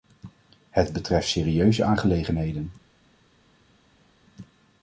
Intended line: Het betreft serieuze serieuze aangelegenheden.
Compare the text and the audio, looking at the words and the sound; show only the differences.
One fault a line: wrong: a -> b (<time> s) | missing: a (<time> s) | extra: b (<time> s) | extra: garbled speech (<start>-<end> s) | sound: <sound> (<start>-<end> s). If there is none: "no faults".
missing: serieuze (1.8 s)